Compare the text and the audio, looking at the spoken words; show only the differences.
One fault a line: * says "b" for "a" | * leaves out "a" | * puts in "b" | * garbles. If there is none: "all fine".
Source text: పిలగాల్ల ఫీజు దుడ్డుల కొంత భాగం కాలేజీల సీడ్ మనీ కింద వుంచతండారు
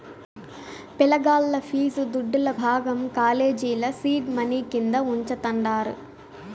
* leaves out "కొంత"